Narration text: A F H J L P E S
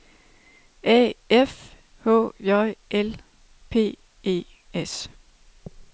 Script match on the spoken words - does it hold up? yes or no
yes